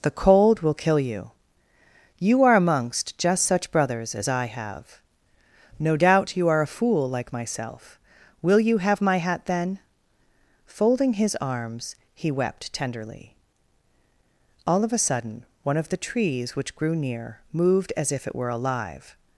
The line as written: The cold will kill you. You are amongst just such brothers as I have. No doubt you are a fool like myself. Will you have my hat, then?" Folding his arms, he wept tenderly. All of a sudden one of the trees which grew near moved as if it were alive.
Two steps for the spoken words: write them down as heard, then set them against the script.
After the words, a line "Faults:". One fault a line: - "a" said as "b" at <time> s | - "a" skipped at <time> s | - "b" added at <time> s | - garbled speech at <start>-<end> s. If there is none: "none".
The cold will kill you. You are amongst just such brothers as I have. No doubt you are a fool like myself. Will you have my hat, then?" Folding his arms, he wept tenderly. All of a sudden one of the trees which grew near moved as if it were alive.
Faults:
none